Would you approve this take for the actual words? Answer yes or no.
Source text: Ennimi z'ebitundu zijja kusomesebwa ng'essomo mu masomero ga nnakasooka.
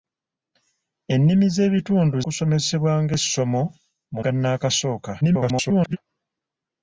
no